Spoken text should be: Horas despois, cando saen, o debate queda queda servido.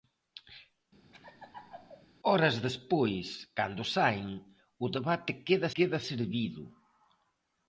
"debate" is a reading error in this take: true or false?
false